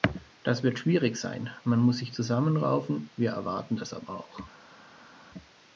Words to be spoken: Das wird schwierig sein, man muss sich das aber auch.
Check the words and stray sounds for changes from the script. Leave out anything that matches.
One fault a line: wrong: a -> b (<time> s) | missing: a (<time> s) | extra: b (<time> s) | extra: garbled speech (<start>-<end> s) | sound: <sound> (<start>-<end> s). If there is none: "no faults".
extra: zusammenraufen wir erwarten (2.1 s)